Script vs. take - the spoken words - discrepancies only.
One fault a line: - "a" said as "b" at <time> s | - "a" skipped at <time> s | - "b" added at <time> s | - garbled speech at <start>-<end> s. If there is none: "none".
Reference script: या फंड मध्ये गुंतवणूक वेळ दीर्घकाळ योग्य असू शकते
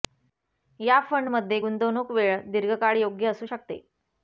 none